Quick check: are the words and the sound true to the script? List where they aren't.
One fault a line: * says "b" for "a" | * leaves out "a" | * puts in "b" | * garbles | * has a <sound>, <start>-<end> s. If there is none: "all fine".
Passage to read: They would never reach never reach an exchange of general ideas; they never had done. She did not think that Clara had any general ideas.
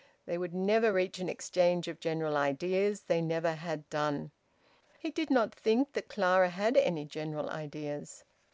* leaves out "never reach"
* says "He" for "She"